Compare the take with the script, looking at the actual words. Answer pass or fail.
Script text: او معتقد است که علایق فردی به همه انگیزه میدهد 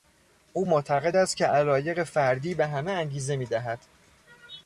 pass